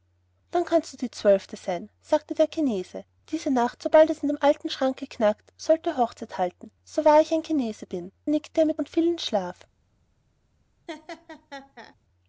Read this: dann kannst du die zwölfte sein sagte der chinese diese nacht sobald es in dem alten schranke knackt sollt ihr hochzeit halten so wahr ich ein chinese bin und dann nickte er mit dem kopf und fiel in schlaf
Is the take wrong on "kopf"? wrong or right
wrong